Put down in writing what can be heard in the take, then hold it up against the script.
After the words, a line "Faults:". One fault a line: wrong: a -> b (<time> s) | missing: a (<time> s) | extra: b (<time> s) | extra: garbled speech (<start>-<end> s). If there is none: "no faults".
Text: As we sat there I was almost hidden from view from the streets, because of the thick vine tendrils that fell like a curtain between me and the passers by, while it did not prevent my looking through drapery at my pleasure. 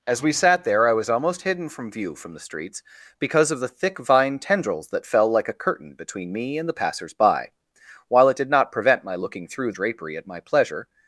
As we sat there I was almost hidden from view from the streets, because of the thick vine tendrils that fell like a curtain between me and the passers by, while it did not prevent my looking through drapery at my pleasure.
Faults:
no faults